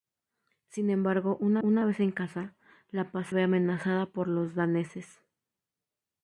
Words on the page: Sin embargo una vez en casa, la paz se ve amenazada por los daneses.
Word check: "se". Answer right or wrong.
wrong